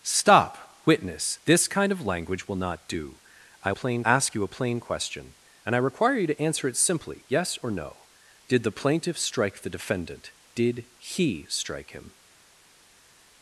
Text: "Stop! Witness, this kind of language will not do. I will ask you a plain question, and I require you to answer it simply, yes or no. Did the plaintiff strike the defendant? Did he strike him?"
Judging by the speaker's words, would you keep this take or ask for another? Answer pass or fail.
fail